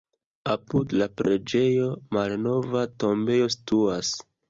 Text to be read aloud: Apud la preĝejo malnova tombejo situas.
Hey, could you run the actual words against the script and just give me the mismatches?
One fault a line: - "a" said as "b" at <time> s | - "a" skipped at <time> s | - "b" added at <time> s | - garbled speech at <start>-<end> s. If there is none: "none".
none